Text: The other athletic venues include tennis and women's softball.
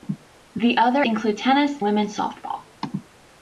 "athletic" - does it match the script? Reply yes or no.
no